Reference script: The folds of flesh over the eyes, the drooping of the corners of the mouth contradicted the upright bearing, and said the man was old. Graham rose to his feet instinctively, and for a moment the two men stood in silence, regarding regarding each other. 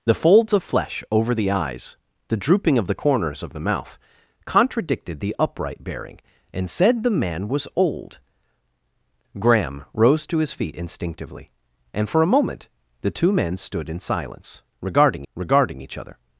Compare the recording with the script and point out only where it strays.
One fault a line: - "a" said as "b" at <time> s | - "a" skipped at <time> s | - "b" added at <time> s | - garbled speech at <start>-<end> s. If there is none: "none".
none